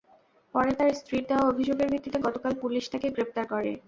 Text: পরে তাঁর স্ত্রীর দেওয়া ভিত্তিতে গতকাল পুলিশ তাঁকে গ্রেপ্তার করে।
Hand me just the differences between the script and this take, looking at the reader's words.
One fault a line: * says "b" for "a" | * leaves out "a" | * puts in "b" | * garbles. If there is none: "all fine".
* puts in "অভিযোগের"